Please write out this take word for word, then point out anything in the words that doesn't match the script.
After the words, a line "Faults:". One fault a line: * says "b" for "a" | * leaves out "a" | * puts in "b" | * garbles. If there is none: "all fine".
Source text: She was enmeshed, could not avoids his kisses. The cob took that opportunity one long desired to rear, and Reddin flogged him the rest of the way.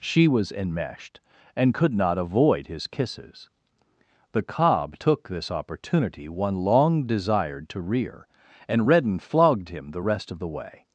She was enmeshed, and could not avoid his kisses. The cob took this opportunity one long desired to rear, and Reddin flogged him the rest of the way.
Faults:
* puts in "and"
* says "avoid" for "avoids"
* says "this" for "that"